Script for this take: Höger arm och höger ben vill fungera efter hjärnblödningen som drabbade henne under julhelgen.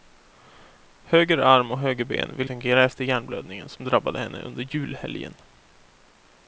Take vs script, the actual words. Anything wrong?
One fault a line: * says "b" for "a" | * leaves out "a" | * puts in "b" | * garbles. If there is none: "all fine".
all fine